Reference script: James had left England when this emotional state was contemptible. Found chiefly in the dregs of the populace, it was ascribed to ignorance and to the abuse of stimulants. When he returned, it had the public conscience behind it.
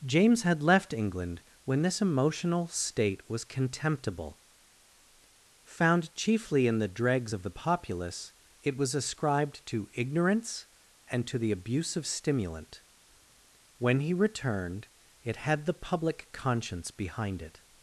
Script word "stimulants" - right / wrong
wrong